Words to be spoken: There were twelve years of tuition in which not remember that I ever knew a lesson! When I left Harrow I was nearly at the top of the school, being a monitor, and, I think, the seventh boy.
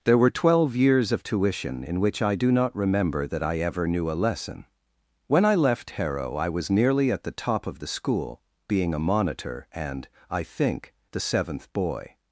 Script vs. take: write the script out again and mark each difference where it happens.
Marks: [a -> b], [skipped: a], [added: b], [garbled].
There were twelve years of tuition in which [added: I do] not remember that I ever knew a lesson! When I left Harrow I was nearly at the top of the school, being a monitor, and, I think, the seventh boy.